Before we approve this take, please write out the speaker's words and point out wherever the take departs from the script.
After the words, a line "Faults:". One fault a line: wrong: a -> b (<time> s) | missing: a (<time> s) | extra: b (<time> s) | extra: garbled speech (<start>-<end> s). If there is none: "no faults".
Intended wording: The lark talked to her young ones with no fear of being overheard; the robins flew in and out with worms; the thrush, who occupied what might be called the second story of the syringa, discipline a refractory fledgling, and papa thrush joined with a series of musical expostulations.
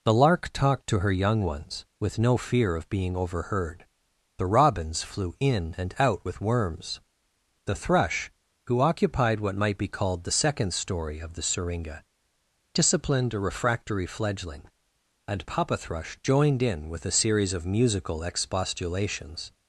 The lark talked to her young ones with no fear of being overheard; the robins flew in and out with worms; the thrush, who occupied what might be called the second story of the syringa, disciplined a refractory fledgling, and papa thrush joined in with a series of musical expostulations.
Faults:
wrong: discipline -> disciplined (12.7 s)
extra: in (16.6 s)